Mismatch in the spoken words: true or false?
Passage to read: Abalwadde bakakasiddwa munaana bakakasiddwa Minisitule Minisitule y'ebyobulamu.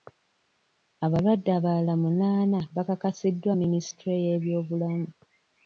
true